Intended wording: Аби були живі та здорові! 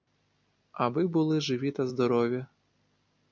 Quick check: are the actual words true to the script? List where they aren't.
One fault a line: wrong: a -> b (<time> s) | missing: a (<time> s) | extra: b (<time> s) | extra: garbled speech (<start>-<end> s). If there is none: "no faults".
no faults